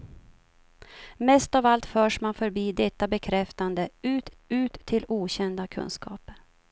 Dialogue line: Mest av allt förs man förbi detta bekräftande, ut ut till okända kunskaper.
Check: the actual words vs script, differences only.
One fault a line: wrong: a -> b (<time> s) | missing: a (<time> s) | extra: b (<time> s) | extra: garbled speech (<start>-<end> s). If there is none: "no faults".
no faults